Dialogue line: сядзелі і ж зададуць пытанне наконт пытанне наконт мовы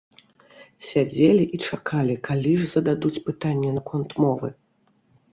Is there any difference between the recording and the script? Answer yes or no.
yes